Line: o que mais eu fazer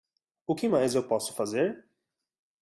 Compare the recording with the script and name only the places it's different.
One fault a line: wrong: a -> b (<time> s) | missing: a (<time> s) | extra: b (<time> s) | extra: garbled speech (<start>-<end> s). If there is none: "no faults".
extra: posso (1.1 s)